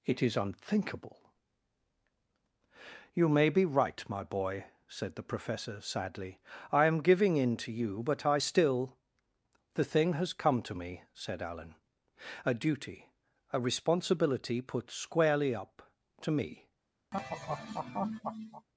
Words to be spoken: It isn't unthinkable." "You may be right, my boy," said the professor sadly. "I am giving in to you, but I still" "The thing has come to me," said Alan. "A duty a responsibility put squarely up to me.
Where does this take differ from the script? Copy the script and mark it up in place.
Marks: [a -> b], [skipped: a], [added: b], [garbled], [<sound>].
It [isn't -> is] unthinkable." "You may be right, my boy," said the professor sadly. "I am giving in to you, but I still" "The thing has come to me," said Alan. "A duty a responsibility put squarely up to me. [laugh]